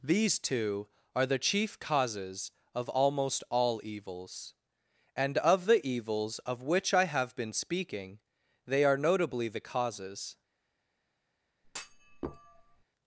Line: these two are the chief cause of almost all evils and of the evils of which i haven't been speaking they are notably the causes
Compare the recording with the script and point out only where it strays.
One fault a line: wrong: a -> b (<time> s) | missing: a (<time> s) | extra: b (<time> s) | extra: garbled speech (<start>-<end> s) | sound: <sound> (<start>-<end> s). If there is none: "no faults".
wrong: cause -> causes (1.8 s)
wrong: haven't -> have (7.0 s)
sound: thud (11.6-12.8 s)